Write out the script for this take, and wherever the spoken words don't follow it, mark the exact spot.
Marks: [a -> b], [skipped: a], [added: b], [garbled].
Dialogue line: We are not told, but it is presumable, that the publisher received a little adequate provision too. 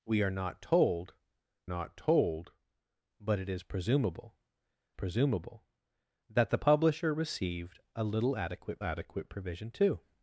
We are not told, [added: not told] but it is presumable, [added: presumable] that the publisher received a little adequate [added: adequate] provision too.